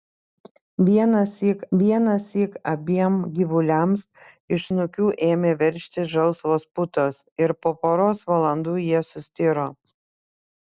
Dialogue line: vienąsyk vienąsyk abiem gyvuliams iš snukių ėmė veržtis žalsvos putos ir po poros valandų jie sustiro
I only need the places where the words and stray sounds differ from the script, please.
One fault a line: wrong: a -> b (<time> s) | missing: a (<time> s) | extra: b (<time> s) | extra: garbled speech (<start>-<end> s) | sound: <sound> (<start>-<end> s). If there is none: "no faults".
no faults